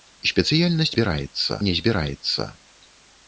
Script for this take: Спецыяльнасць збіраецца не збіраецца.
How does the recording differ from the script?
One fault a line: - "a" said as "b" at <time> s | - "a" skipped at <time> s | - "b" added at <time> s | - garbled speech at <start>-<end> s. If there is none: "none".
none